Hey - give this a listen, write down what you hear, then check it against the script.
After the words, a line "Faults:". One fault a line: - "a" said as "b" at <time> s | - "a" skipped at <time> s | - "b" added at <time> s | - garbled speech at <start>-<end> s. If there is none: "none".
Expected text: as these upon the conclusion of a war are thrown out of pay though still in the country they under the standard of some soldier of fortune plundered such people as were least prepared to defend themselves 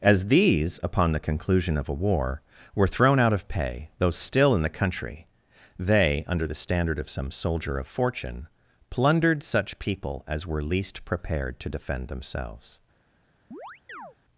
as these upon the conclusion of a war were thrown out of pay though still in the country they under the standard of some soldier of fortune plundered such people as were least prepared to defend themselves
Faults:
- "are" said as "were" at 2.8 s